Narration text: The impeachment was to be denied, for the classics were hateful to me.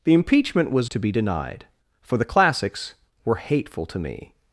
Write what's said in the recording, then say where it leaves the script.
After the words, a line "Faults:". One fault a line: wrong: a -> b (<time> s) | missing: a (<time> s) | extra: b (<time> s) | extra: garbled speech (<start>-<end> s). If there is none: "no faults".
The impeachment was to be denied, for the classics were hateful to me.
Faults:
no faults